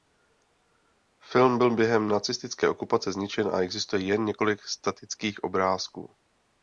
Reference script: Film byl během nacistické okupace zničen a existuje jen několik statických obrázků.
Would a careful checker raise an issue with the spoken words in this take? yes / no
no